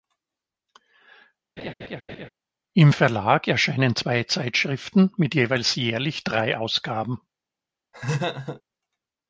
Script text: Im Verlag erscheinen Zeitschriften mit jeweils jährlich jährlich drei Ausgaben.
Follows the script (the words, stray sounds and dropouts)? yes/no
no